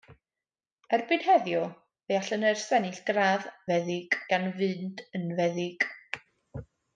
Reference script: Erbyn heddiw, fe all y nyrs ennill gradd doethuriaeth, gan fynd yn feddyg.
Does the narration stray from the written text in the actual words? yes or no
yes